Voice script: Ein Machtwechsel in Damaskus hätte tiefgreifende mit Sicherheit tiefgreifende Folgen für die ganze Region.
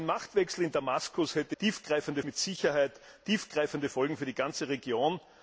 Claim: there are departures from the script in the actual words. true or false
false